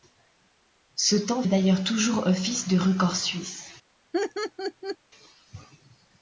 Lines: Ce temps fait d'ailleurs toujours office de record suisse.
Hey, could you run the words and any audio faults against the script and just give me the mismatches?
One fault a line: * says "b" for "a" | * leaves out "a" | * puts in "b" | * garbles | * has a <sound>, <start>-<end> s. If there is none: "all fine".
* leaves out "fait"
* has a laugh, 4.1-5.0 s